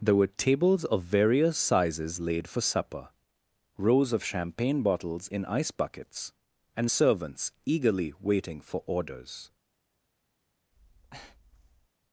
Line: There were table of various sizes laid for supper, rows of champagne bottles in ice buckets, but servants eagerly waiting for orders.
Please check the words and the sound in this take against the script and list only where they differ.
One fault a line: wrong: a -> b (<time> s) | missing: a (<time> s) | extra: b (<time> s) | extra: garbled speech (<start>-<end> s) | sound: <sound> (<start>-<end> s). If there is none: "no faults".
wrong: table -> tables (0.3 s)
wrong: but -> and (6.8 s)
sound: breath (10.7-11.9 s)